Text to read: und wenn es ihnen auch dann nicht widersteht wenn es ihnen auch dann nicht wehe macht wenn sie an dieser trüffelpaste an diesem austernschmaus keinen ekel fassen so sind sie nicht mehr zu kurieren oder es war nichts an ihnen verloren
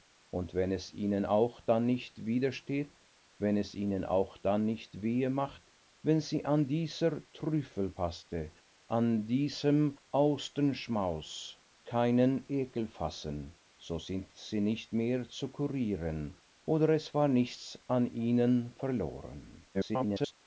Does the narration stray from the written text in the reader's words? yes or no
yes